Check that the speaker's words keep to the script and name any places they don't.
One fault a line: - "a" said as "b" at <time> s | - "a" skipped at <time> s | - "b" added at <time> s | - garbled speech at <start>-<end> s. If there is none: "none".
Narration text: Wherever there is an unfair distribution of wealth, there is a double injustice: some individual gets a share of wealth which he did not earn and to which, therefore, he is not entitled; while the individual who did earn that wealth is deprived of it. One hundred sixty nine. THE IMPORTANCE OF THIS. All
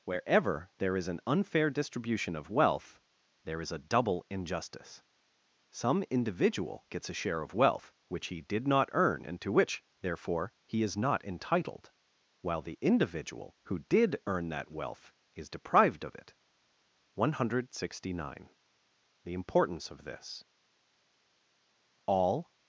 none